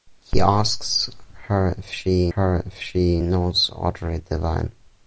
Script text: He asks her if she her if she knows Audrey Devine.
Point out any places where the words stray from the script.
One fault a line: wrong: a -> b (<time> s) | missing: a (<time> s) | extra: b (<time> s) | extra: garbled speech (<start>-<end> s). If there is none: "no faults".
no faults